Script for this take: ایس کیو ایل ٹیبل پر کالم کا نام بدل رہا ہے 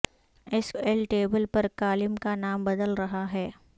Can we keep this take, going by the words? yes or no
no